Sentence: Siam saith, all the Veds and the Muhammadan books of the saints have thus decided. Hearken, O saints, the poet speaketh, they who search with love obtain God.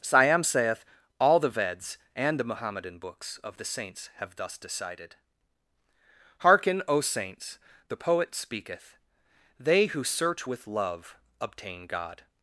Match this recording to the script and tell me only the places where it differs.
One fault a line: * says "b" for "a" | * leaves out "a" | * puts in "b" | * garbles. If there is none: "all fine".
all fine